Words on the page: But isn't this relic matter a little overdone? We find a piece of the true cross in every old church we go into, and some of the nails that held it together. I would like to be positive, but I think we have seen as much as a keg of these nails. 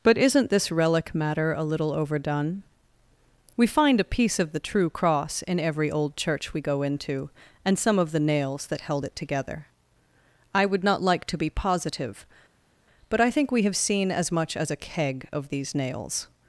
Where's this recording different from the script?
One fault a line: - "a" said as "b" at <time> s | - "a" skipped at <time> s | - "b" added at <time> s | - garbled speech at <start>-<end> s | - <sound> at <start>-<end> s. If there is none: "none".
- "not" added at 10.9 s